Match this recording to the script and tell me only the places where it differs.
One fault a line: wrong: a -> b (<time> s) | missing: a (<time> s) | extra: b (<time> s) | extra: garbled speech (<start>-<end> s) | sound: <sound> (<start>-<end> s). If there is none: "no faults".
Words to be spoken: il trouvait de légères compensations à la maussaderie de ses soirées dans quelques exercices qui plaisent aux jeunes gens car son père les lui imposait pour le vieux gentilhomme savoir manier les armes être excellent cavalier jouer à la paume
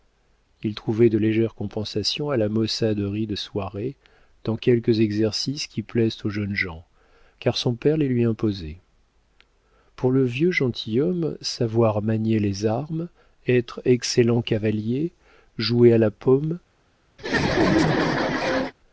missing: ses (3.4 s)
sound: laugh (17.2-18.7 s)